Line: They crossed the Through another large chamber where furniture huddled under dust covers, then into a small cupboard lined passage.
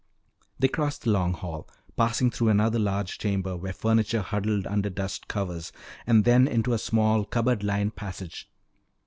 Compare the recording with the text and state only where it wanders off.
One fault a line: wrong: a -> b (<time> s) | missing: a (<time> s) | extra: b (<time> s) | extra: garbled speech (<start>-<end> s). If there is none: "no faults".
extra: Long Hall passing (1.1 s)
extra: and (6.0 s)